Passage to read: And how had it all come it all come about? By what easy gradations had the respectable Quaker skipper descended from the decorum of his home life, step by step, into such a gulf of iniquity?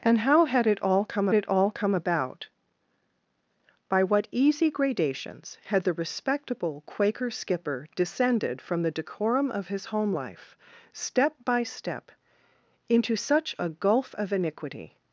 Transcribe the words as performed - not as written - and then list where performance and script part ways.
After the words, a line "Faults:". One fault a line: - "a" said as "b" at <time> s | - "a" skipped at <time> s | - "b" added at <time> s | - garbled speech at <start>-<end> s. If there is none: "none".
And how had it all come it all come about? By what easy gradations had the respectable Quaker skipper descended from the decorum of his home life, step by step, into such a gulf of iniquity?
Faults:
none